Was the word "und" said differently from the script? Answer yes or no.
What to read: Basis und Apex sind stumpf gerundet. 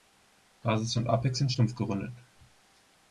no